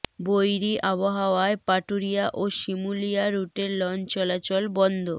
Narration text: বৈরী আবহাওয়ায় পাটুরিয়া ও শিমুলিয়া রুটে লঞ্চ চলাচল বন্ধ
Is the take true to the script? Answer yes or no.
yes